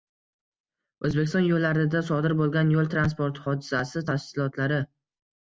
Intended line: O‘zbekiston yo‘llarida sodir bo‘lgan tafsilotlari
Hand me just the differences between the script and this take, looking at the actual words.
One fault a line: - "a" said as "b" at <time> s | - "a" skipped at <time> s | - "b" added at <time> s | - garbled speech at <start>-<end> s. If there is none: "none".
- "yo´l transport hodisasi" added at 2.8 s